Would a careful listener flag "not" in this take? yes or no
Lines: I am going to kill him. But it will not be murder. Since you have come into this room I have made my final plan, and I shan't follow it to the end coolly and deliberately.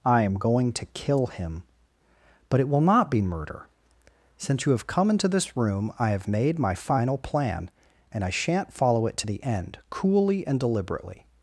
no